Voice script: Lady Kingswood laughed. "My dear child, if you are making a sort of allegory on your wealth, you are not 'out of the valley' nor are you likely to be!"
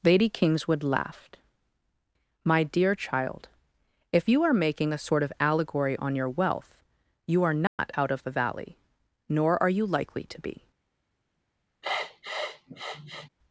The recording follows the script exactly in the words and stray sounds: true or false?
false